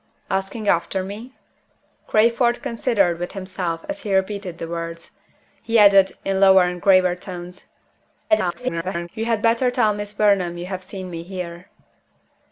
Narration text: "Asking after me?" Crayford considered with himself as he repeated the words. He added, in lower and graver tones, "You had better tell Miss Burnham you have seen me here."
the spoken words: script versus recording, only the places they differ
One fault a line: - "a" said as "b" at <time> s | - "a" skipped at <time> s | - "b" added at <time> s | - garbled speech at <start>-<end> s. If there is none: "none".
- garbled speech at 8.3-9.1 s